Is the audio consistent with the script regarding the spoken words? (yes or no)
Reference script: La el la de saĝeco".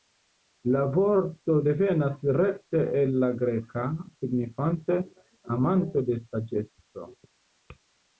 no